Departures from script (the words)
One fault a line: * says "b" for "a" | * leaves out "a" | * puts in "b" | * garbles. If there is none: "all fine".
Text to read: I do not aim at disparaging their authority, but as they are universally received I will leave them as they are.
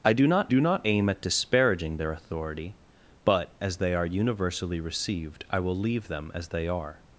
* puts in "do not"